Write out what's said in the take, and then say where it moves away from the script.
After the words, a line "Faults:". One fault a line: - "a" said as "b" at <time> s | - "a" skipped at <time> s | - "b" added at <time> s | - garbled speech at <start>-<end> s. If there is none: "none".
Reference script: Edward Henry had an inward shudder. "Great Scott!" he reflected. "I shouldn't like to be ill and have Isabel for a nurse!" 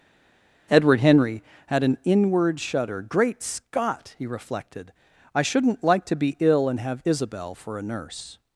Edward Henry had an inward shudder. "Great Scott!" he reflected. "I shouldn't like to be ill and have Isabel for a nurse!"
Faults:
none